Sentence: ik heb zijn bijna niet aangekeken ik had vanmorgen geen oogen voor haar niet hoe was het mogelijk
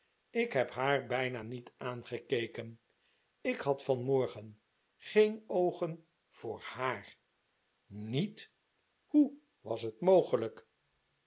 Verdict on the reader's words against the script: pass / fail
fail